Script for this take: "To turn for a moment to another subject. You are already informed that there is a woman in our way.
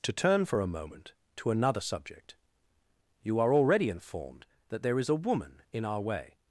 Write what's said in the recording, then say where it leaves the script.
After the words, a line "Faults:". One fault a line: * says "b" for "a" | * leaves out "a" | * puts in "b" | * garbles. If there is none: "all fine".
"To turn for a moment to another subject. You are already informed that there is a woman in our way.
Faults:
all fine